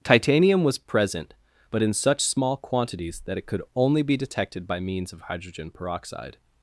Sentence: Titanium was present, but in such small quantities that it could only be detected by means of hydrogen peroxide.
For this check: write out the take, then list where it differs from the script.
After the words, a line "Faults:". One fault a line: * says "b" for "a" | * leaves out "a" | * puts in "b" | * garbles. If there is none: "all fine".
Titanium was present, but in such small quantities that it could only be detected by means of hydrogen peroxide.
Faults:
all fine